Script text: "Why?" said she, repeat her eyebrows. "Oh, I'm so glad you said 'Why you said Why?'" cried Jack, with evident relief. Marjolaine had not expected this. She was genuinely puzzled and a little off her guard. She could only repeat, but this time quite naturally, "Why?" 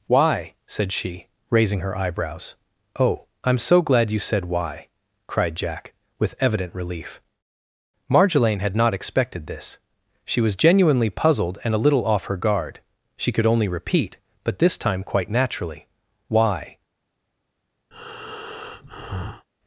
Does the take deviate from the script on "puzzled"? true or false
false